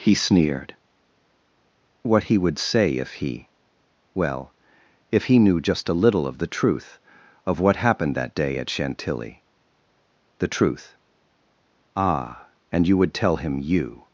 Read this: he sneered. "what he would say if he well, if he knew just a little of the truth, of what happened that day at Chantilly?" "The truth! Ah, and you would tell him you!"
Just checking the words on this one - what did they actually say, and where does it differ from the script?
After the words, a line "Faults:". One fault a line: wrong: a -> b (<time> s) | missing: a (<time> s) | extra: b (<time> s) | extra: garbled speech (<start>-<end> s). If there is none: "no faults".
he sneered. "what he would say if he well, if he knew just a little of the truth, of what happened that day at Chantilly?" "The truth! Ah, and you would tell him you!"
Faults:
no faults